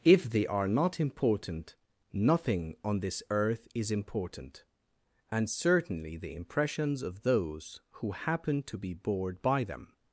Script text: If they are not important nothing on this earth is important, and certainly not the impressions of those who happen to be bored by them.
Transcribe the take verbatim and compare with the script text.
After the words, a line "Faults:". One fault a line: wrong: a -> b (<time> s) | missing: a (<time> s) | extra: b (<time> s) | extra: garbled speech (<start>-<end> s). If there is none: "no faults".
If they are not important nothing on this earth is important, and certainly the impressions of those who happen to be bored by them.
Faults:
missing: not (6.2 s)